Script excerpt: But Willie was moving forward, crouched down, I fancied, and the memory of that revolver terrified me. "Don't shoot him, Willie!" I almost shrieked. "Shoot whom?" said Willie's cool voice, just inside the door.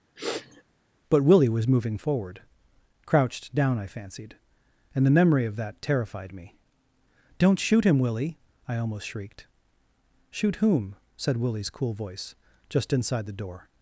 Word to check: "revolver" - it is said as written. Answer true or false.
false